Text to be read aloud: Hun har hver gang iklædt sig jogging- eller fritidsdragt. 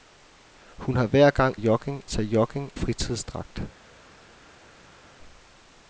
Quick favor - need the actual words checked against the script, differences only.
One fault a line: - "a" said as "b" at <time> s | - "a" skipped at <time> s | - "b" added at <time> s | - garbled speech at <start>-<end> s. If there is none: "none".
- "iklædt" said as "jogging" at 1.5 s
- "eller" skipped at 2.7 s